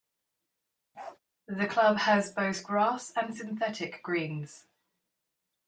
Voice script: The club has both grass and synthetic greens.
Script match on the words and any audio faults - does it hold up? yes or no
no